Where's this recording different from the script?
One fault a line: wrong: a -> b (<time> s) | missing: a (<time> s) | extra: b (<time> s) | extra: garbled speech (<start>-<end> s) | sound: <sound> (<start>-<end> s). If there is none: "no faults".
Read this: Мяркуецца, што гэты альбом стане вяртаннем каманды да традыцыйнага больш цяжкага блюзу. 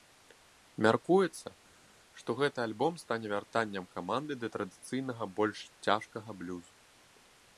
no faults